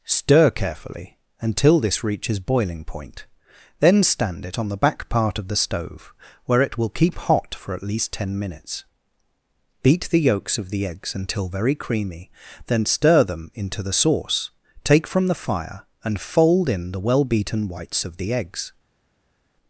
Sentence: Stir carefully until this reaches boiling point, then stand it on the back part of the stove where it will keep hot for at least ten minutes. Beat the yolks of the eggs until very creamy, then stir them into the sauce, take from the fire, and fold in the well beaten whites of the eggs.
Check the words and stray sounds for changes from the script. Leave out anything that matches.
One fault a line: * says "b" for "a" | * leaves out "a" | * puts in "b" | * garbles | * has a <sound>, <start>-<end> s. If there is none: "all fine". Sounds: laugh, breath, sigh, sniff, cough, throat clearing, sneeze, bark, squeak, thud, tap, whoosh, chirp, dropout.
all fine